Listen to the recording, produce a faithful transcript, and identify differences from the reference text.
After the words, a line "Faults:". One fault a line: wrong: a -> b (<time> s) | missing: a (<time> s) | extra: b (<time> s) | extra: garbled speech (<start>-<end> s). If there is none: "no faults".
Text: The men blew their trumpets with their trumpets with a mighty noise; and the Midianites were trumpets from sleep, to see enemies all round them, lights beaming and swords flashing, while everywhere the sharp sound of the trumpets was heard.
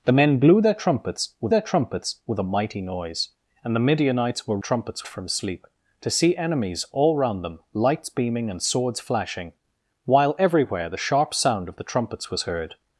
The men blew their trumpets with their trumpets with a mighty noise; and the Midianites were trumpets from sleep, to see enemies all round them, lights beaming and swords flashing, while everywhere the sharp sound of the trumpets was heard.
Faults:
no faults